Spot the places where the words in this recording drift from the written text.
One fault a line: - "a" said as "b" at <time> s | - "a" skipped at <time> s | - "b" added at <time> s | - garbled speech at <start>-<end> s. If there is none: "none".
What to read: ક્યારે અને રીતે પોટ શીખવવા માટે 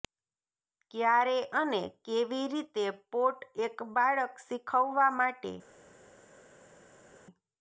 - "કેવી" added at 2.0 s
- "એક બાળક" added at 3.6 s